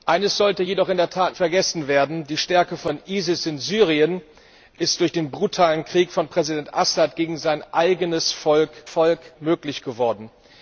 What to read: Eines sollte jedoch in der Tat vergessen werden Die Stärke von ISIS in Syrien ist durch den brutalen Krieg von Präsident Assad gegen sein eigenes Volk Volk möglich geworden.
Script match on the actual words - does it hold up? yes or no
yes